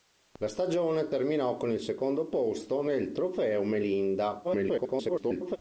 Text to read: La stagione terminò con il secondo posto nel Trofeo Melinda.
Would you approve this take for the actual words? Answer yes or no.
no